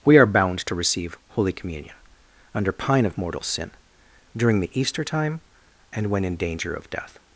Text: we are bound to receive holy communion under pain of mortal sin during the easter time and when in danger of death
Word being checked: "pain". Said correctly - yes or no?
no